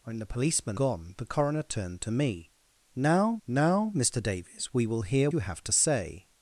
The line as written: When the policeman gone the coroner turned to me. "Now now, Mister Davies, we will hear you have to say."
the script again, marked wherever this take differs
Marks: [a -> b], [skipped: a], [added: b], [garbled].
When the policeman gone the coroner turned to me. "Now now, Mister Davies, we will hear you have to say."